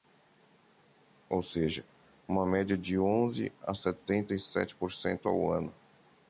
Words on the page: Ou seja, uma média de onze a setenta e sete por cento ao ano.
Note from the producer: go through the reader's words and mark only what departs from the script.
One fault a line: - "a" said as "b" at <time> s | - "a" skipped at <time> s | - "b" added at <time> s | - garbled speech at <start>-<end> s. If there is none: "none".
none